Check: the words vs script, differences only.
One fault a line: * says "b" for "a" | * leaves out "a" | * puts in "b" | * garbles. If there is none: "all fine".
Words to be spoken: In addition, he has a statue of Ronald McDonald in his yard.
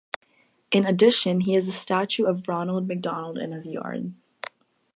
all fine